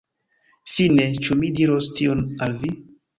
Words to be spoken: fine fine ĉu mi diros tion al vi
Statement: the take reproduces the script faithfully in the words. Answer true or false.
false